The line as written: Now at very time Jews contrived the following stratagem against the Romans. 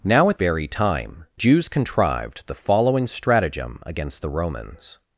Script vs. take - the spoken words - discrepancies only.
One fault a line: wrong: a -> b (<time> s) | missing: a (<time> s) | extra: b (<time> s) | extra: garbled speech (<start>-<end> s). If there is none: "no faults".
no faults